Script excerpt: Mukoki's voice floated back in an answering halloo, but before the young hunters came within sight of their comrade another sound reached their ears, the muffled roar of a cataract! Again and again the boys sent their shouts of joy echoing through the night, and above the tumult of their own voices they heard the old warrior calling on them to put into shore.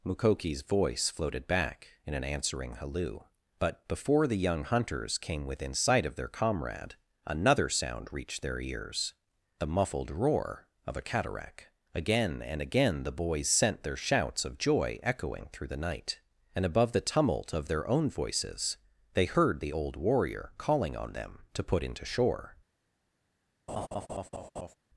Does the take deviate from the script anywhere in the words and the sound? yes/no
yes